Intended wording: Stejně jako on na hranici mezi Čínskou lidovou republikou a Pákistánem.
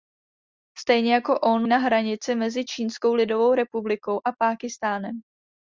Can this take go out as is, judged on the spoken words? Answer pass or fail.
pass